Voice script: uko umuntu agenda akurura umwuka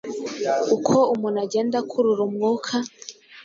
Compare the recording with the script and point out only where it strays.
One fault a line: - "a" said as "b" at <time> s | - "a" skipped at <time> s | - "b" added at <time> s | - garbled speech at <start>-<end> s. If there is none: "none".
none